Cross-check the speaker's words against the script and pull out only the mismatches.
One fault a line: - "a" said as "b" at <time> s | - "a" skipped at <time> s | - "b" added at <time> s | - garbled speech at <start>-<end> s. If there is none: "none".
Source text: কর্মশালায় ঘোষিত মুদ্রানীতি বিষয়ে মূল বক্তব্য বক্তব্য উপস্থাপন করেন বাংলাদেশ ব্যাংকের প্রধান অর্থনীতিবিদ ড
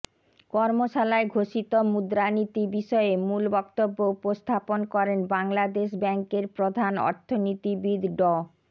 - "বক্তব্য" skipped at 4.0 s